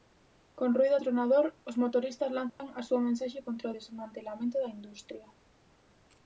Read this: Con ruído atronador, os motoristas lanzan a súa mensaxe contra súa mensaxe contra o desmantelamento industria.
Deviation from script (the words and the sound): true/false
true